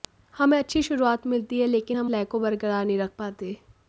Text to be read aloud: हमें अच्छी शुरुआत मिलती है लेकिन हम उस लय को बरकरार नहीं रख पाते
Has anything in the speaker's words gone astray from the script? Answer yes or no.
yes